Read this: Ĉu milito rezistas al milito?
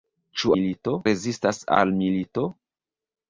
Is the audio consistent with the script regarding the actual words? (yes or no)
yes